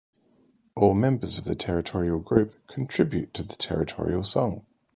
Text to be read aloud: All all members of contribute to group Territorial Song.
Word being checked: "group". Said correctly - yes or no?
no